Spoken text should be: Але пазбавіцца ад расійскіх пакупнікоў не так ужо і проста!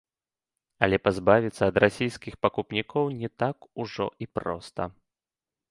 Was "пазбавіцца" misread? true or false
false